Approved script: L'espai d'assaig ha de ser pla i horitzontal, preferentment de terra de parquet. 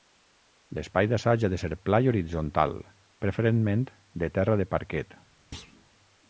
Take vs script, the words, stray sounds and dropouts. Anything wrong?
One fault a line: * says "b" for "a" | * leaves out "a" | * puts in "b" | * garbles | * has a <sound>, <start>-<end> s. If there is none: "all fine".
* has a thud, 5.5-5.9 s